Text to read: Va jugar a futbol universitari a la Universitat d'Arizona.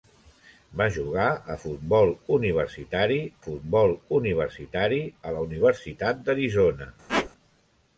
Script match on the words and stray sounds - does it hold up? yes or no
no